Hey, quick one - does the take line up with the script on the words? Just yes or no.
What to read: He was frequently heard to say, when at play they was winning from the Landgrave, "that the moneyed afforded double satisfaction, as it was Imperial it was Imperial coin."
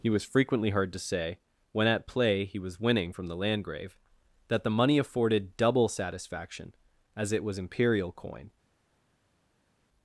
no